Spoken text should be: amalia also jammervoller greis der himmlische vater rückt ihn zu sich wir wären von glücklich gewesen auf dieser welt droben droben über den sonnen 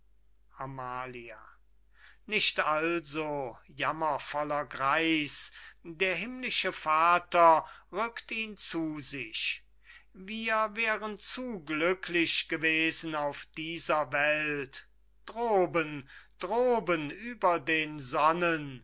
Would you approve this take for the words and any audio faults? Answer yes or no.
no